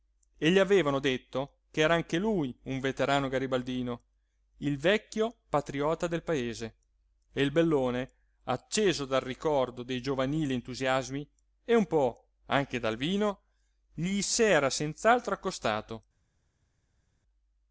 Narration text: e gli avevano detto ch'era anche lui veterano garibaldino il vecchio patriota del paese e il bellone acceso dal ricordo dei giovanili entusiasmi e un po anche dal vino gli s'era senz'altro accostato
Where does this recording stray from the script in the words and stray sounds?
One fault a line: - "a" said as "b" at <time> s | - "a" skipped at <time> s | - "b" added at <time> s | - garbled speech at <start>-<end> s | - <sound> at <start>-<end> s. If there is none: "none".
- "un" added at 2.6 s